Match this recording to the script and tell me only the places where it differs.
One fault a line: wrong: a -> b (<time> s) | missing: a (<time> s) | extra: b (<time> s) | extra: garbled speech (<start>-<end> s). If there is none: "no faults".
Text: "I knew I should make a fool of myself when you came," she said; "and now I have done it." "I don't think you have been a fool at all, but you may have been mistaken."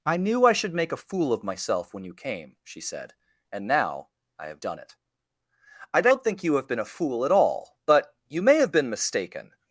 no faults